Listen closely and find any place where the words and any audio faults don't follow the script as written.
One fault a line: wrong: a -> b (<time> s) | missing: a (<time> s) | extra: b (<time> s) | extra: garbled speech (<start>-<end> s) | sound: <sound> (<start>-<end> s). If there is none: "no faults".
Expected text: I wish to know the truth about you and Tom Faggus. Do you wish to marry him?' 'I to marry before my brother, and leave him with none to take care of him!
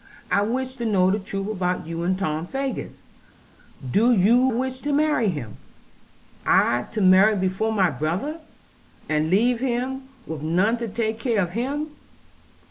no faults